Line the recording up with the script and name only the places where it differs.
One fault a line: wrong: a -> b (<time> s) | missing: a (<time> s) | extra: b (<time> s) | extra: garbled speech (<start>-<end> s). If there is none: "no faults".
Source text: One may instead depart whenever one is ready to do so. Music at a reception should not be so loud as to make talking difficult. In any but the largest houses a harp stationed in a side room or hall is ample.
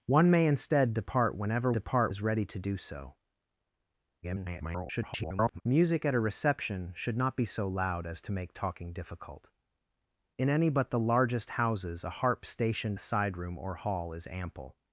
wrong: one -> depart (1.7 s)
extra: garbled speech (4.2-5.6 s)
missing: in (13.0 s)